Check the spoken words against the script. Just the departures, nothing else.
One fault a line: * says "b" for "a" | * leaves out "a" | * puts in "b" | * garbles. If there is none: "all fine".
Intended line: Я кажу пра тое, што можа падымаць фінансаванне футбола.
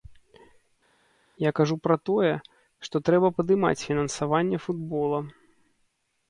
* says "трэба" for "можа"